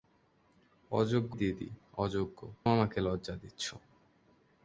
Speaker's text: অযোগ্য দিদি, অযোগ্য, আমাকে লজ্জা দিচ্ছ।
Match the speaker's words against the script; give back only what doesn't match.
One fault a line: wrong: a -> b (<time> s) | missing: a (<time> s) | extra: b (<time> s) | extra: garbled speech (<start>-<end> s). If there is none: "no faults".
no faults